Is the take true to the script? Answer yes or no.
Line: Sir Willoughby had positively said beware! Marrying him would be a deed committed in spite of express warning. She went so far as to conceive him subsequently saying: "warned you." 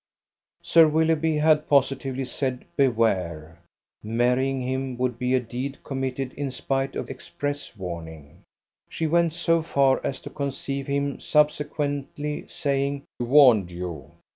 yes